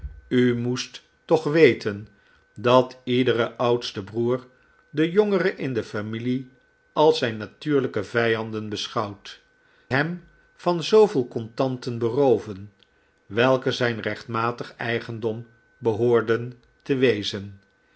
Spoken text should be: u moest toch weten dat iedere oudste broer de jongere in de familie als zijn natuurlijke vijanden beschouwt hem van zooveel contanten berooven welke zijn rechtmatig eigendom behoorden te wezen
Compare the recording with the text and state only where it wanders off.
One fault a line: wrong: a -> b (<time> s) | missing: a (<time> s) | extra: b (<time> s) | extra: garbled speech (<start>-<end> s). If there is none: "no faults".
no faults